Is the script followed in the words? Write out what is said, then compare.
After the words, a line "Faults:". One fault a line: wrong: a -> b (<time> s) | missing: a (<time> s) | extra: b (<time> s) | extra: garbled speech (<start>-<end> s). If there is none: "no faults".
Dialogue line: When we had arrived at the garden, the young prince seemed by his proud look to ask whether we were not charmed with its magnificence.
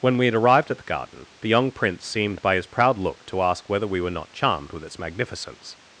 When we had arrived at the garden, the young prince seemed by his proud look to ask whether we were not charmed with its magnificence.
Faults:
no faults